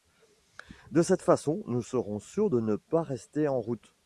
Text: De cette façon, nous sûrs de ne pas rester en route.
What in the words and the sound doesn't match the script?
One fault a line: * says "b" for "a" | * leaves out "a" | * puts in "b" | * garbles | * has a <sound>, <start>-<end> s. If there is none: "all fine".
* puts in "serons"